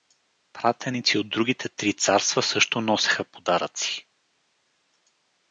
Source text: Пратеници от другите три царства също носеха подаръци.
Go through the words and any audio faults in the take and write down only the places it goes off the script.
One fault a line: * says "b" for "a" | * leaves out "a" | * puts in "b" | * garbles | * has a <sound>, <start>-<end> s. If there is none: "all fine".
all fine